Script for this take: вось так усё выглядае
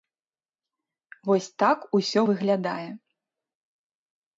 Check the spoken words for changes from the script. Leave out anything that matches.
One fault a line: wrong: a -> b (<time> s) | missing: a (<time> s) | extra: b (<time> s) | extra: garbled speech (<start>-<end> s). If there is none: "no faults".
no faults